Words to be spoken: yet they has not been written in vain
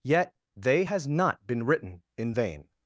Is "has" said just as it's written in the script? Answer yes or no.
yes